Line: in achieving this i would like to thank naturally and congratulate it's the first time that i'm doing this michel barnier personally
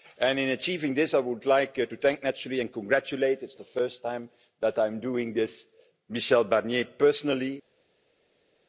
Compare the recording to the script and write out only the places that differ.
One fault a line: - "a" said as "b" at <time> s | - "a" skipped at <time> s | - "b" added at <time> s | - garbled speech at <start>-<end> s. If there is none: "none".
none